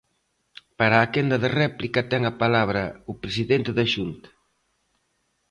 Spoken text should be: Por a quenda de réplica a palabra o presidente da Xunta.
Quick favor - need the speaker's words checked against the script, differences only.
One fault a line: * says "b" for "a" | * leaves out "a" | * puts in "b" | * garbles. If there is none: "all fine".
* says "Para" for "Por"
* puts in "ten"